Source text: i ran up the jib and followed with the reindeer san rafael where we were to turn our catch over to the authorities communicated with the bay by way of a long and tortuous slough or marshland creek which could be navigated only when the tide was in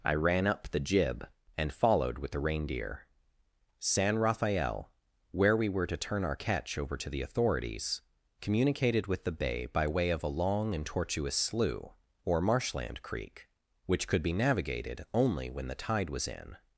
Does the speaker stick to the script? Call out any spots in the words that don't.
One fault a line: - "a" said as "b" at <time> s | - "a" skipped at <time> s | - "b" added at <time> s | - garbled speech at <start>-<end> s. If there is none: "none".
none